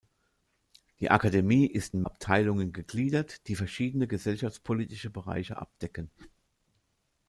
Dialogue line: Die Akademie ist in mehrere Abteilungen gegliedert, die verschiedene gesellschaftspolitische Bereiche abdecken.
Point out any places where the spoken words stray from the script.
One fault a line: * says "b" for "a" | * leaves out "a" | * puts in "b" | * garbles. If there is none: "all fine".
* leaves out "mehrere"